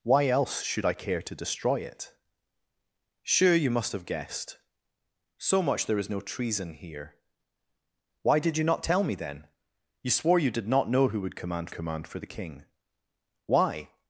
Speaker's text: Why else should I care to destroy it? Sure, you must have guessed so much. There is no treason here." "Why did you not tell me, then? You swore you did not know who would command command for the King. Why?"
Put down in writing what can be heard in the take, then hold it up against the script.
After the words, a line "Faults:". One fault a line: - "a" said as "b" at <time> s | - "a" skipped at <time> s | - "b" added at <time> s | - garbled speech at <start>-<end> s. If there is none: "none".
Why else should I care to destroy it? Sure, you must have guessed so much. There is no treason here." "Why did you not tell me, then? You swore you did not know who would command command for the King. Why?"
Faults:
none